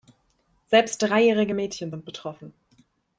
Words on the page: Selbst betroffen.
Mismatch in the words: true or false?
true